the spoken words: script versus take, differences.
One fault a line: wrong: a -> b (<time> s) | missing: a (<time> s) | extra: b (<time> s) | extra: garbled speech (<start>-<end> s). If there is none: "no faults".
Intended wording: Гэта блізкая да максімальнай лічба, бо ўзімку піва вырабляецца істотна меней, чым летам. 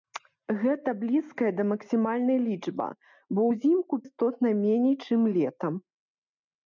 missing: піва вырабляецца (3.9 s)